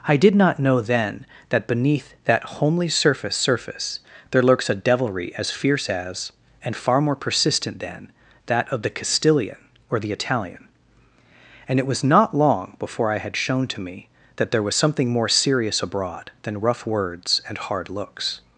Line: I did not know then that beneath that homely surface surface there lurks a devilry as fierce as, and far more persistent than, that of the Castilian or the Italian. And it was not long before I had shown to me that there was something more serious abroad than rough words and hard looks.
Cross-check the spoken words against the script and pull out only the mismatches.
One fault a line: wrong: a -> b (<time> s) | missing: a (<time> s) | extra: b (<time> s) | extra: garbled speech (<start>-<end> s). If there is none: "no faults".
no faults